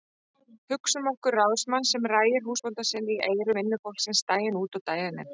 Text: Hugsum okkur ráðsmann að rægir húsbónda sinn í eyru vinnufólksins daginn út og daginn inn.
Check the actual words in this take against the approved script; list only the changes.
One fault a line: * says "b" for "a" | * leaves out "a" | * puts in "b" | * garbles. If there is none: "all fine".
* says "sem" for "að"